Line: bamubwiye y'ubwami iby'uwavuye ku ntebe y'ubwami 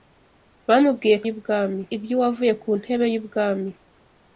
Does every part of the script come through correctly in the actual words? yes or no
yes